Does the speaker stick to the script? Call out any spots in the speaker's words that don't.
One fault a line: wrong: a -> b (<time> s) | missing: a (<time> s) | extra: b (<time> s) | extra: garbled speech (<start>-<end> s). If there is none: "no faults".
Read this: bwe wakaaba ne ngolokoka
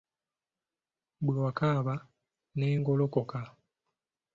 no faults